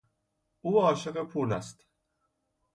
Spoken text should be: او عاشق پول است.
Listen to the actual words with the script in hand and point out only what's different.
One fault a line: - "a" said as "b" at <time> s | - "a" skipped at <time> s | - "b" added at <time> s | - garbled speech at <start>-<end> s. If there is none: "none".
none